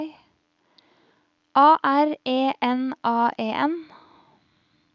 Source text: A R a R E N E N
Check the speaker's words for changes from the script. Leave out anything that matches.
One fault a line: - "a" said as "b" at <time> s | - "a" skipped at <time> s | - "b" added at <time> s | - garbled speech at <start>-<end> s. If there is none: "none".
- "a R" skipped at 2.2 s
- "A" added at 3.0 s